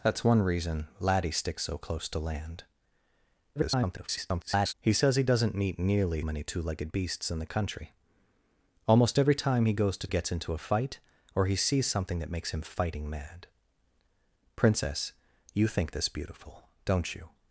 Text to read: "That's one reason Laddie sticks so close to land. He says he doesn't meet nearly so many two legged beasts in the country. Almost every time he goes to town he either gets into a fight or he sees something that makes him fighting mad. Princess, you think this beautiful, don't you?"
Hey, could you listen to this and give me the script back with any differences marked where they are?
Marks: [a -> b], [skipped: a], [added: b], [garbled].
"That's one reason Laddie sticks so close to land. [garbled] He says he doesn't meet nearly [skipped: so] many two legged beasts in the country. Almost every time he goes to [skipped: town he either] gets into a fight or he sees something that makes him fighting mad. Princess, you think this beautiful, don't you?"